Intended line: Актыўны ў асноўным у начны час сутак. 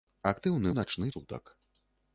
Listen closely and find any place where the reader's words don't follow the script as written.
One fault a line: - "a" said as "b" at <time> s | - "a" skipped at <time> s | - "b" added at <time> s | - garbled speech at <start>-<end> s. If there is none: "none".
- "ў асноўным" skipped at 0.7 s
- "час" skipped at 1.1 s